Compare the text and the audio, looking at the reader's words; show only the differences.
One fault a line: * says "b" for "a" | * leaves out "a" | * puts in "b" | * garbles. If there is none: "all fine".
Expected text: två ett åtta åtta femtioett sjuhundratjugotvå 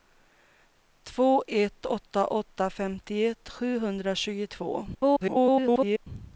* garbles